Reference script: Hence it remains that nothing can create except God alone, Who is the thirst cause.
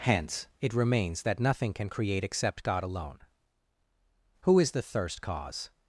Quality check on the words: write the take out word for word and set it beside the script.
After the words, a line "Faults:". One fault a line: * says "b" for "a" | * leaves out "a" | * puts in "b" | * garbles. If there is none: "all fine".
Hence it remains that nothing can create except God alone, Who is the thirst cause.
Faults:
all fine